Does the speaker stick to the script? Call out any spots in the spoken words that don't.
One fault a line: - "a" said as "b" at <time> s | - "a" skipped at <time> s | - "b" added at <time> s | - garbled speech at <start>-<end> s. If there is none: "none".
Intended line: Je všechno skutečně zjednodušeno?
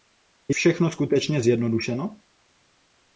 none